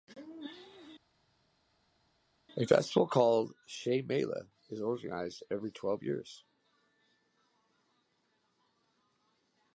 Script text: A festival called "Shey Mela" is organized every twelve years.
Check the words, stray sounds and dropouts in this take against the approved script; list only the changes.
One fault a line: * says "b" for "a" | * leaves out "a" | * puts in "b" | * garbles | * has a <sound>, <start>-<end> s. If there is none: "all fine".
all fine